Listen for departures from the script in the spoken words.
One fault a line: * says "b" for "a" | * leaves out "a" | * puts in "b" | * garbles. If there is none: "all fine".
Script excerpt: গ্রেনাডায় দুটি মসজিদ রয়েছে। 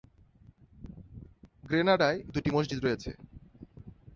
all fine